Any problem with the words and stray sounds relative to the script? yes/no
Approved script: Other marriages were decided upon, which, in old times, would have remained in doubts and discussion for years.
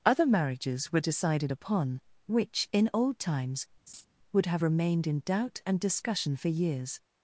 yes